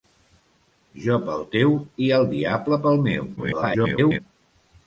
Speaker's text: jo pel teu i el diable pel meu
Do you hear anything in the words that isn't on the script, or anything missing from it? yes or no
yes